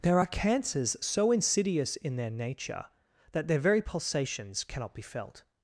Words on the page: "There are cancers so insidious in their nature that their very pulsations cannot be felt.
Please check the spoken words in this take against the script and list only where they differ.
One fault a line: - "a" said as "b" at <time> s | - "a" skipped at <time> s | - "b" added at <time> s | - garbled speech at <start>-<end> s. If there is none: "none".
none